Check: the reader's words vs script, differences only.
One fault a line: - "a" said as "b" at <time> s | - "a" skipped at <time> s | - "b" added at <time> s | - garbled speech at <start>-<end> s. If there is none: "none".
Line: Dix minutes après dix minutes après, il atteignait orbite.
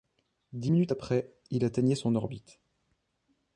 - "dix minutes après" skipped at 1.3 s
- "son" added at 1.9 s